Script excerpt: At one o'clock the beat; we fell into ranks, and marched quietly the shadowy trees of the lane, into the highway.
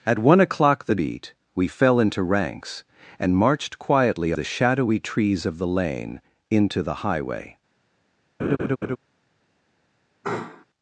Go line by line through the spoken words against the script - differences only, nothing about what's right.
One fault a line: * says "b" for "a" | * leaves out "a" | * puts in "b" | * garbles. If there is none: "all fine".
all fine